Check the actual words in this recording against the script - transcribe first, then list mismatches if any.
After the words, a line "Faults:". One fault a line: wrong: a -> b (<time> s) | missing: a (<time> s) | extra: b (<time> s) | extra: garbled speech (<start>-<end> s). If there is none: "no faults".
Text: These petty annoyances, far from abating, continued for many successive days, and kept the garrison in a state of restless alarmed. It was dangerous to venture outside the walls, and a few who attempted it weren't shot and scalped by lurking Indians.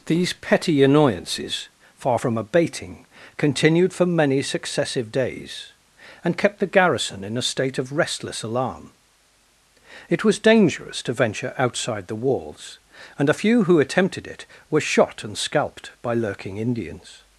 These petty annoyances, far from abating, continued for many successive days, and kept the garrison in a state of restless alarm. It was dangerous to venture outside the walls, and a few who attempted it were shot and scalped by lurking Indians.
Faults:
wrong: alarmed -> alarm (8.4 s)
wrong: weren't -> were (14.7 s)